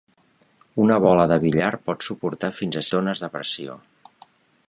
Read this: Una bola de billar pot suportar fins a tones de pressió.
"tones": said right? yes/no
yes